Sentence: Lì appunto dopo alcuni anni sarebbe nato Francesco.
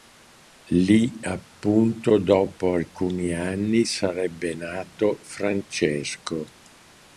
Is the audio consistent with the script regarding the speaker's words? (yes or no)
yes